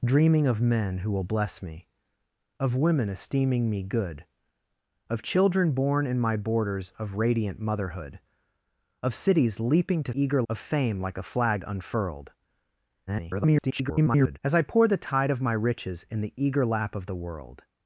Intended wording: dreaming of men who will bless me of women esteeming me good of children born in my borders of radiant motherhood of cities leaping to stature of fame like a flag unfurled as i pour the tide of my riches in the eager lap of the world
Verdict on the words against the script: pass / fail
fail